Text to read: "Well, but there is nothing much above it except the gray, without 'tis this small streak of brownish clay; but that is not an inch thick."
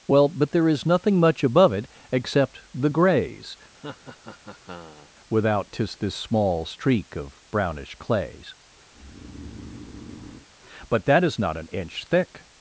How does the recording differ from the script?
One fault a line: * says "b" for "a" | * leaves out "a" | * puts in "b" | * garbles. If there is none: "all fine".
* says "grays" for "gray"
* says "clays" for "clay"